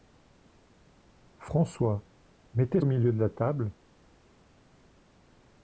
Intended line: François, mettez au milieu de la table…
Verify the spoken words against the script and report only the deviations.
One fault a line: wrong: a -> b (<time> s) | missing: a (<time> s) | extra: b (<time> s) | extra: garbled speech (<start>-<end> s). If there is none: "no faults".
no faults